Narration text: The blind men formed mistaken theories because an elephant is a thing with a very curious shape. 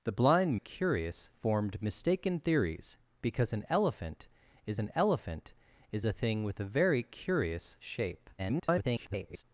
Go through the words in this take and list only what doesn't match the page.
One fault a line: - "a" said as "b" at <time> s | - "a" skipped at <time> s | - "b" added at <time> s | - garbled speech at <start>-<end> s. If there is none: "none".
- "men" said as "curious" at 0.5 s
- "an elephant is" added at 4.8 s
- garbled speech at 8.4-9.4 s